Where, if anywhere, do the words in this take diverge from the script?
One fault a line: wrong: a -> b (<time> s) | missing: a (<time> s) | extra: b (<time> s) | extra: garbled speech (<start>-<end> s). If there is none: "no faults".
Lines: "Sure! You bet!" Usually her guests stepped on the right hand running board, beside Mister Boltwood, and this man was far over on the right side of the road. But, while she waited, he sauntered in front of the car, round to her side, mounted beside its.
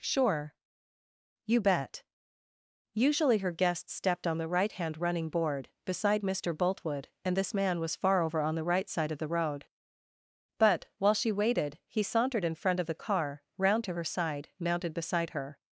wrong: its -> her (15.3 s)